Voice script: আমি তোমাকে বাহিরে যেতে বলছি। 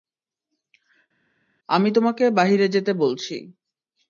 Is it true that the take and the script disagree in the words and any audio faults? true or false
false